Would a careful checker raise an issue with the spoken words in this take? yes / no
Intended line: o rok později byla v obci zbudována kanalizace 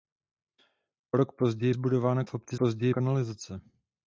yes